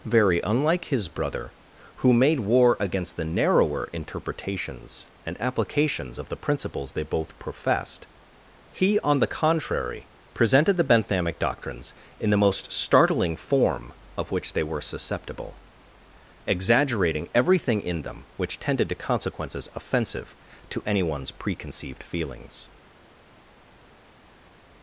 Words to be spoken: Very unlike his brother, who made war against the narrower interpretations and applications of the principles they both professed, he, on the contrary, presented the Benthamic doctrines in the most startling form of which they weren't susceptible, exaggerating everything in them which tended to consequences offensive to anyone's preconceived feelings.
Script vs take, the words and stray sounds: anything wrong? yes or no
yes